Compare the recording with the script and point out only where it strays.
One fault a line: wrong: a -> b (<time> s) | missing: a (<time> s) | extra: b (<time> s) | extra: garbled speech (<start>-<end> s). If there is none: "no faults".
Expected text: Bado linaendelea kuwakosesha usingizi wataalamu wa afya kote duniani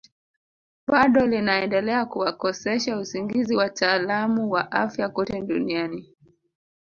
no faults